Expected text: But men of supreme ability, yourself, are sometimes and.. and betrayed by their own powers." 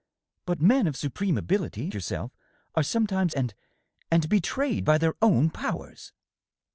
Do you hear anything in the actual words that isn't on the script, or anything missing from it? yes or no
no